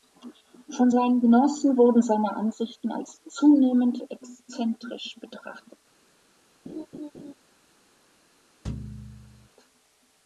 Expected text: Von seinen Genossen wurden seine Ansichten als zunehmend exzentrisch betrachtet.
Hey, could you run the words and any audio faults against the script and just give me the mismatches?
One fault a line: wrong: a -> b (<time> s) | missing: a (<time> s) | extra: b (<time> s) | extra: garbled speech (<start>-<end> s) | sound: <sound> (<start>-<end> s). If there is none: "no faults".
sound: laugh (6.7-7.3 s)
sound: thud (8.6-9.5 s)